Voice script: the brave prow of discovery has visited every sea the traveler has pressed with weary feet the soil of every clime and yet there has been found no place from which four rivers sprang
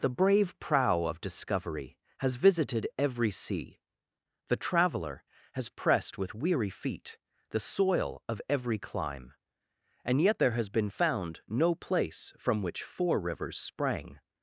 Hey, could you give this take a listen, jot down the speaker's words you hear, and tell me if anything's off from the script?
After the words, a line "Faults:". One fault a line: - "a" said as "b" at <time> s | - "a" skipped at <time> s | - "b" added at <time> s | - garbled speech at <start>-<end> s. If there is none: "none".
the brave prow of discovery has visited every sea the traveler has pressed with weary feet the soil of every clime and yet there has been found no place from which four rivers sprang
Faults:
none